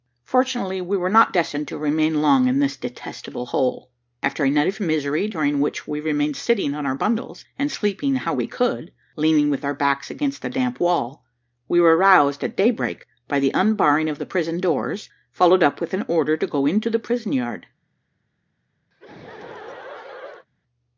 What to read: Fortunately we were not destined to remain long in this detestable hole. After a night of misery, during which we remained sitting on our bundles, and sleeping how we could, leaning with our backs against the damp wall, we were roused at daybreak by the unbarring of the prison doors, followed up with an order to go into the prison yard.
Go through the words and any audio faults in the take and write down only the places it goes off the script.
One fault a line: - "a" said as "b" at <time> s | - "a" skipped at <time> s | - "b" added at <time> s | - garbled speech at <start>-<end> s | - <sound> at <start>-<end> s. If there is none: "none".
- laugh at 18.9-20.5 s